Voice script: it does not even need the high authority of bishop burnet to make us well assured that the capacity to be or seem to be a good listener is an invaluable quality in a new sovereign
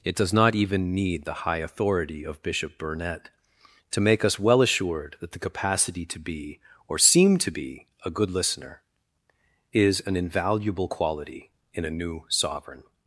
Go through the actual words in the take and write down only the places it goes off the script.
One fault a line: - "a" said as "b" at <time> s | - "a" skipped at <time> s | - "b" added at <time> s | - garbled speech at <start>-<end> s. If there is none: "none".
none